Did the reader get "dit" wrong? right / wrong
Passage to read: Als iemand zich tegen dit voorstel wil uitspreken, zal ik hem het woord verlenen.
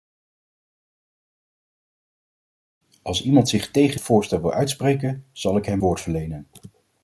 wrong